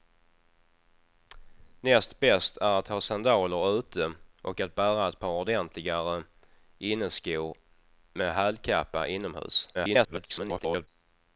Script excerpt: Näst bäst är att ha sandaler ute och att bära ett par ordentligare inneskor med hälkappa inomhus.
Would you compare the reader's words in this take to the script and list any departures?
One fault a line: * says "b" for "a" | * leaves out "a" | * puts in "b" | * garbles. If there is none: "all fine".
* garbles